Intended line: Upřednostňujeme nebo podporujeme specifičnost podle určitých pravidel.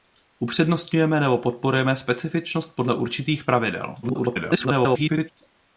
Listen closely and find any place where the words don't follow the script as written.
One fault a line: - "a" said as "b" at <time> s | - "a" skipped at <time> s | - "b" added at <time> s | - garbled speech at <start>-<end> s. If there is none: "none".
- garbled speech at 4.0-5.3 s